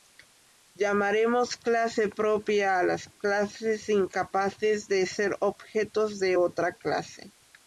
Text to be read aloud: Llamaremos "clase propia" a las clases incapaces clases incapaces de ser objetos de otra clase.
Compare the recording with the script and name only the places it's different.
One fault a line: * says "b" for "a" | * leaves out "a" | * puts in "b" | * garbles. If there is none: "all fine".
* leaves out "clases incapaces"